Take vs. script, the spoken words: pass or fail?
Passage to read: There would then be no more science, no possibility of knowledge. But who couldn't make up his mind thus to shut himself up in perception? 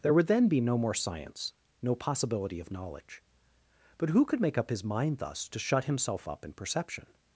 fail